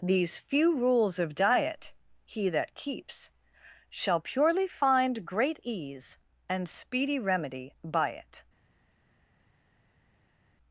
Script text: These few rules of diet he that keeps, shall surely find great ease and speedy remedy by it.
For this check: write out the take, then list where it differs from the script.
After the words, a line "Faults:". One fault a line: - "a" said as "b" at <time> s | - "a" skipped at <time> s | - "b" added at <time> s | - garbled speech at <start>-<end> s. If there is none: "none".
These few rules of diet he that keeps, shall purely find great ease and speedy remedy by it.
Faults:
- "surely" said as "purely" at 4.2 s